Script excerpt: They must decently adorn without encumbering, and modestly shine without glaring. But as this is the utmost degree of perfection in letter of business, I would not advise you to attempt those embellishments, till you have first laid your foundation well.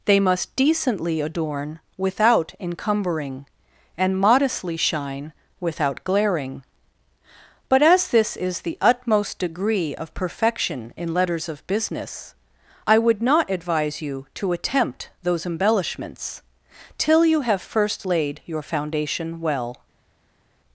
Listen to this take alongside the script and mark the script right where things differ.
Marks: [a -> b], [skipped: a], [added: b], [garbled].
They must decently adorn without encumbering, and modestly shine without glaring. But as this is the utmost degree of perfection in [letter -> letters] of business, I would not advise you to attempt those embellishments, till you have first laid your foundation well.